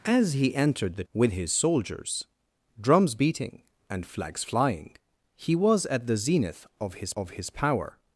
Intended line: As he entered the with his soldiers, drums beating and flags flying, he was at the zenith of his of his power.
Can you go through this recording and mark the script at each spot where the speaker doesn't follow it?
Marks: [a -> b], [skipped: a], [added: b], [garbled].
As he entered the with his soldiers, drums beating and flags flying, he was at the zenith of his of his power.